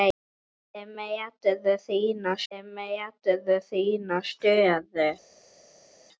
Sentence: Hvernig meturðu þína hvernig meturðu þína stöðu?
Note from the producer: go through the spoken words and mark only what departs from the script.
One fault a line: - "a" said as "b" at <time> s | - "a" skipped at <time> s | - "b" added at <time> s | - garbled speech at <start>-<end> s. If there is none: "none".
none